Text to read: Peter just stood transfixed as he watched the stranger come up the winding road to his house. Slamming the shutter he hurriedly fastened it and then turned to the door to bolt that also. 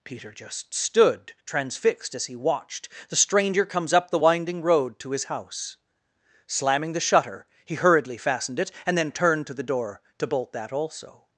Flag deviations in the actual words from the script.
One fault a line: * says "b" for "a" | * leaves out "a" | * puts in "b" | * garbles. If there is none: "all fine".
* says "comes" for "come"